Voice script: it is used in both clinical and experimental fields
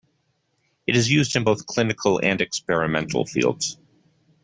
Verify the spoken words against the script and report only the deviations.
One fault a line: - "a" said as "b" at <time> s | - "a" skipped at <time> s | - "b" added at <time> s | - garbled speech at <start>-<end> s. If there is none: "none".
none